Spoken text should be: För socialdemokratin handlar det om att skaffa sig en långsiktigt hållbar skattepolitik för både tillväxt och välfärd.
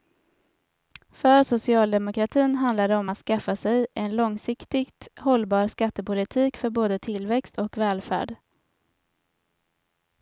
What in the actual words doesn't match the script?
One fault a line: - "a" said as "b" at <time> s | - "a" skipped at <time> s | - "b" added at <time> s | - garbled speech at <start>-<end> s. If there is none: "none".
none